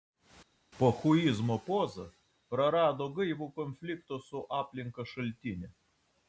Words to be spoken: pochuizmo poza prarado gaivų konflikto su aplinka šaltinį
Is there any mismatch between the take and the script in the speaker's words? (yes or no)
no